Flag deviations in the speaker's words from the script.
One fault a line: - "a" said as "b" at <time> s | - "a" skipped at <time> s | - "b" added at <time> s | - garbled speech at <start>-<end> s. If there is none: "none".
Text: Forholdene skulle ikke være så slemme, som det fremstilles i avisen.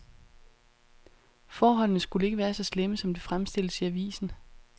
none